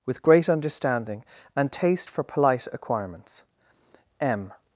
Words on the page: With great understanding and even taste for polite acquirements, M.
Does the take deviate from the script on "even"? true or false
true